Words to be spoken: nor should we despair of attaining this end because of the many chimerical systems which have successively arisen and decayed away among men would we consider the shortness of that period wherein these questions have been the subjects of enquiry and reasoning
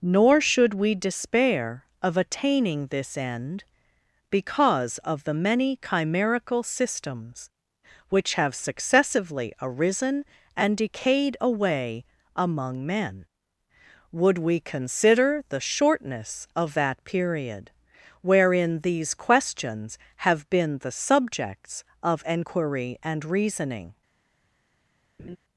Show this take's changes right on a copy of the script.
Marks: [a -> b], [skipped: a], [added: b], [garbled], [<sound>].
nor should we despair of attaining this end because of the many chimerical systems which have successively arisen and decayed away among men would we consider the shortness of that period wherein these questions have been the subjects of enquiry and reasoning [laugh]